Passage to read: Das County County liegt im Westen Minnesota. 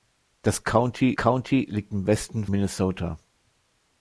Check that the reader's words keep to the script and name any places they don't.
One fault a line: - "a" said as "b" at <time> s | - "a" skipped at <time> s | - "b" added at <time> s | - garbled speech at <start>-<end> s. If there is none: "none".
none